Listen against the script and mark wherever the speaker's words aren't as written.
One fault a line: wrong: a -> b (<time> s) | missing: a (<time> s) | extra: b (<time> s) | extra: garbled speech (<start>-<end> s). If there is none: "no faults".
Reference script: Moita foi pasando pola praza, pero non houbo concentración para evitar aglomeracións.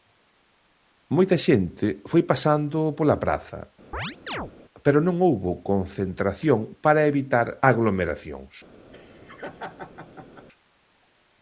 extra: xente (1.4 s)